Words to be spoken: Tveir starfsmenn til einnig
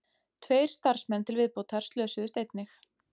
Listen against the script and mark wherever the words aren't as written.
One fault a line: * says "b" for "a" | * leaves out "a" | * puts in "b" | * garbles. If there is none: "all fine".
* puts in "viðbótar slösuðust"